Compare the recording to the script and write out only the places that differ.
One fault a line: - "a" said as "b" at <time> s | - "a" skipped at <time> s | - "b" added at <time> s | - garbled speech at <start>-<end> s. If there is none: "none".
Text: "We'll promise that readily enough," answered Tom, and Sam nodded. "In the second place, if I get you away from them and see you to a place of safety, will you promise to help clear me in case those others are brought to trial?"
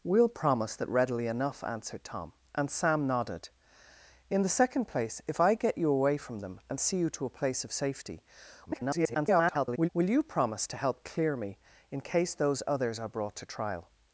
- garbled speech at 8.7-9.9 s